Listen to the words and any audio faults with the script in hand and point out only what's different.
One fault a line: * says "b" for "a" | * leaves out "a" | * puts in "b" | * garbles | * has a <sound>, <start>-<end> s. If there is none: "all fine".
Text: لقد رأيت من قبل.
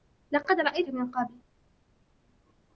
all fine